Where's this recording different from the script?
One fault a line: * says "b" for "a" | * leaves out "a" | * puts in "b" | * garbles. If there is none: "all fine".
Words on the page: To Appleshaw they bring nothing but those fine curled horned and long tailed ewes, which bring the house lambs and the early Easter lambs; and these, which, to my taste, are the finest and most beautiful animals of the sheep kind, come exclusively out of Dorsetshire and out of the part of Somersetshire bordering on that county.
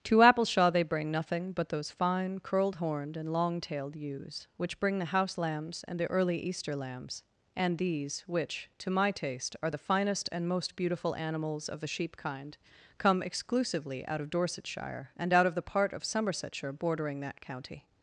* leaves out "on"